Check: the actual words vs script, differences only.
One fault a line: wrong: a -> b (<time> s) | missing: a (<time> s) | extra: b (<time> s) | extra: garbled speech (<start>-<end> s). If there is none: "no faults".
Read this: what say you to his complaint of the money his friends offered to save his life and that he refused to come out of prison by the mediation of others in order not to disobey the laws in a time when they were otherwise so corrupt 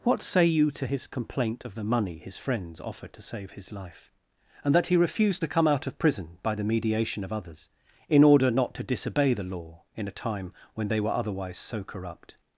wrong: laws -> law (9.4 s)